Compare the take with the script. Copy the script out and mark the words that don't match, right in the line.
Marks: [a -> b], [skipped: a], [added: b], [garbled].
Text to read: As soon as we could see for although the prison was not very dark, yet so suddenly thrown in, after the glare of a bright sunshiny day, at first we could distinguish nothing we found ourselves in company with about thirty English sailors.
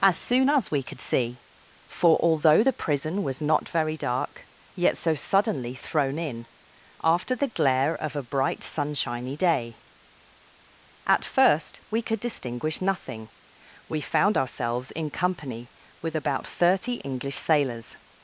As soon as we could see for although the prison was not very dark, yet so suddenly thrown in, after the glare of a bright sunshiny day, at first we could distinguish nothing we found ourselves in company with about thirty English sailors.